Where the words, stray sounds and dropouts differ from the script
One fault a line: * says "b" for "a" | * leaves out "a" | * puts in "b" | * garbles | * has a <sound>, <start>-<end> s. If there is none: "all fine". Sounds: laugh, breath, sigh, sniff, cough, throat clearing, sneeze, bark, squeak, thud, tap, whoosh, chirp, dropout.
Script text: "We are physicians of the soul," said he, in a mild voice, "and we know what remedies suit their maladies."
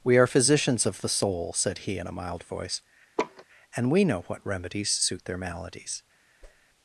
* has a laugh, 3.2-3.4 s
* has a whoosh, 6.4-6.7 s